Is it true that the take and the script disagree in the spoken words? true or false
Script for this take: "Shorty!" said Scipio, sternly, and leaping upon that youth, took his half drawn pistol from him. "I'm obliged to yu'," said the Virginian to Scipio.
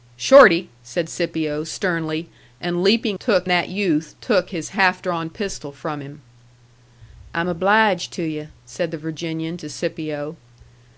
true